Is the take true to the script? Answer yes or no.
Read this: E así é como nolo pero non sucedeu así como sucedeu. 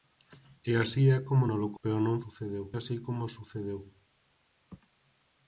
yes